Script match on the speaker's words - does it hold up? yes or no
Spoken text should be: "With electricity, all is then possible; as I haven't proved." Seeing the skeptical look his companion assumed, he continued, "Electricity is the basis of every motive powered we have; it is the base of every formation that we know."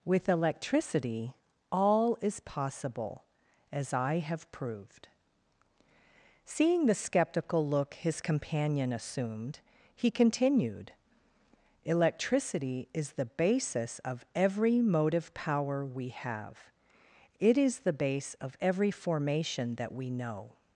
no